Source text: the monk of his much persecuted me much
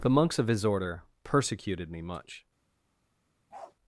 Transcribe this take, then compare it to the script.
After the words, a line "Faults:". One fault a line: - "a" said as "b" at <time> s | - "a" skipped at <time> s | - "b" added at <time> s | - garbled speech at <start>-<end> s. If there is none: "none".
the monks of his order persecuted me much
Faults:
- "monk" said as "monks" at 0.1 s
- "much" said as "order" at 0.7 s